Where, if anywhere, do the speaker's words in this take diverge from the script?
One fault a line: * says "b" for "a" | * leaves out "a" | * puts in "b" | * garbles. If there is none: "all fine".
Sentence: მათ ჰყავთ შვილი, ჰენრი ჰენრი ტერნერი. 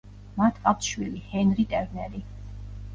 * leaves out "ჰენრი"